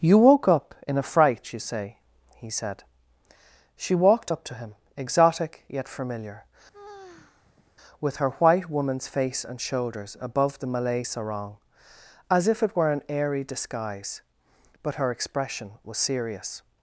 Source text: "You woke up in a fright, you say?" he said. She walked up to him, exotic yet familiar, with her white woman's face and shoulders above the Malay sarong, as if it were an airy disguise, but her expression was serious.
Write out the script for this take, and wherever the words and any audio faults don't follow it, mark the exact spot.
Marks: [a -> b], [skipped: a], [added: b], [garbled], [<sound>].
"You woke up in a fright, you say?" he said. She walked up to him, exotic yet familiar, [sigh] with her white woman's face and shoulders above the Malay sarong, as if it were an airy disguise, but her expression was serious.